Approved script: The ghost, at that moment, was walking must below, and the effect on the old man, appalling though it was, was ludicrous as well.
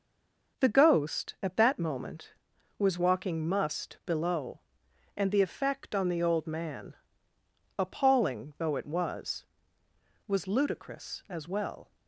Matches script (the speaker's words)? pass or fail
pass